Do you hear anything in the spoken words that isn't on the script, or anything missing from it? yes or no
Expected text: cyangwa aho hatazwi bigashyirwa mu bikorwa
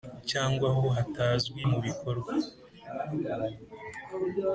yes